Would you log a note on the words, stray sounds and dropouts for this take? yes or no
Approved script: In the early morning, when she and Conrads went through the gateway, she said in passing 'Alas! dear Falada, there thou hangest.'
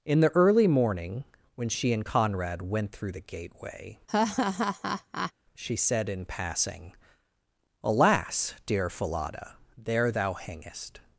yes